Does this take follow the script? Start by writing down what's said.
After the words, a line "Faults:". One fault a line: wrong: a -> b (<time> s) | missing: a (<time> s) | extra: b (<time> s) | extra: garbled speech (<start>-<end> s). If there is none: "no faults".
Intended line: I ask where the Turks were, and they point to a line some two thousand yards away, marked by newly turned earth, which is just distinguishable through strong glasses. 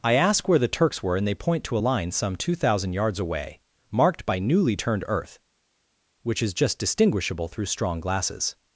I ask where the Turks were, and they point to a line some two thousand yards away, marked by newly turned earth, which is just distinguishable through strong glasses.
Faults:
no faults